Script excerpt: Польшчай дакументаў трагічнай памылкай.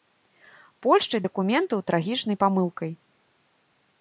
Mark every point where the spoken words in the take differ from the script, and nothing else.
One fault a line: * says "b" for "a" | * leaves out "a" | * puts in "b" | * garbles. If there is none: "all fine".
all fine